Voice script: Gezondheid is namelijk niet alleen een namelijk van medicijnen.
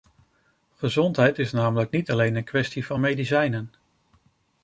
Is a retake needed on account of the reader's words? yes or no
yes